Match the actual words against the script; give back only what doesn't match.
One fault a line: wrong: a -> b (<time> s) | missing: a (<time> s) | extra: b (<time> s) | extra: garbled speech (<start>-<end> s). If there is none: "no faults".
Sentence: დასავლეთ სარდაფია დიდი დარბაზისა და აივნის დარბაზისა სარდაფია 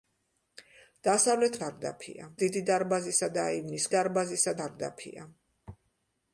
no faults